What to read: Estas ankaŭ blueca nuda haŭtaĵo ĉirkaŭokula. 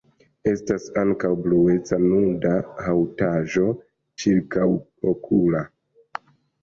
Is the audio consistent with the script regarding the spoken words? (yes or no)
yes